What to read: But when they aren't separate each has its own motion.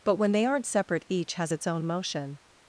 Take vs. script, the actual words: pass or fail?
pass